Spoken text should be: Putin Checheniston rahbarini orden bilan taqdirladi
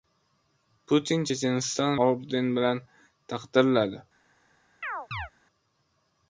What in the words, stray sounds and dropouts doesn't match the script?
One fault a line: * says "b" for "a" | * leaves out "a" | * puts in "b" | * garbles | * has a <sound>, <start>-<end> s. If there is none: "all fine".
* leaves out "rahbarini"
* has a chirp, 4.8-5.3 s